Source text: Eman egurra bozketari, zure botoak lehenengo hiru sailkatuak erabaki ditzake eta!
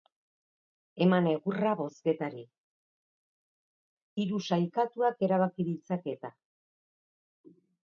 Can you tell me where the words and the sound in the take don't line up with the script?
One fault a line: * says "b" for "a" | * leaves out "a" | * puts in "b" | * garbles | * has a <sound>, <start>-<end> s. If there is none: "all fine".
* leaves out "zure botoak lehenengo"